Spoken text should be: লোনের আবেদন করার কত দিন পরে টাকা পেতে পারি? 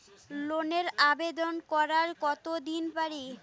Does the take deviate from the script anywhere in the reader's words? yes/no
yes